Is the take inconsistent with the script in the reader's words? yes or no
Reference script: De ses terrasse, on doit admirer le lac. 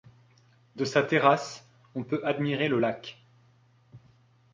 yes